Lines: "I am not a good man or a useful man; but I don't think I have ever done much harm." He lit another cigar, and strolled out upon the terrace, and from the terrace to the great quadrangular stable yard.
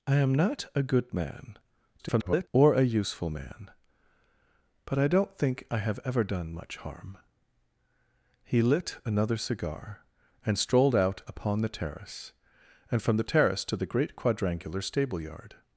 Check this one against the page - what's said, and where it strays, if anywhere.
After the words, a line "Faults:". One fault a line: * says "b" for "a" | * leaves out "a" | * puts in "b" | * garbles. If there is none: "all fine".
"I am not a good man [garbled] or a useful man; but I don't think I have ever done much harm." He lit another cigar, and strolled out upon the terrace, and from the terrace to the great quadrangular stable yard.
Faults:
* garbles